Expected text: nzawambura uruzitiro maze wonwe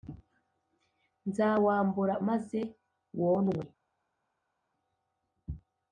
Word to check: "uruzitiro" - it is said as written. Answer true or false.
false